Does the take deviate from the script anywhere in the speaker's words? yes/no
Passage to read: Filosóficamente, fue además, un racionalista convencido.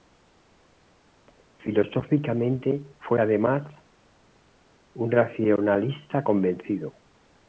no